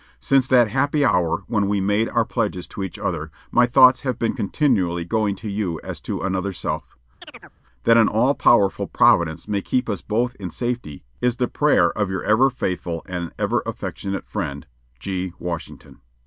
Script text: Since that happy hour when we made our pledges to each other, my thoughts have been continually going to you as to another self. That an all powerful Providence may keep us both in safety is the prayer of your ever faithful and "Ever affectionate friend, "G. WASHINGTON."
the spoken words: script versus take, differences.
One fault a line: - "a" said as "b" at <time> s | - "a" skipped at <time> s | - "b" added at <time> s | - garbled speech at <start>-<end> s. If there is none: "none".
none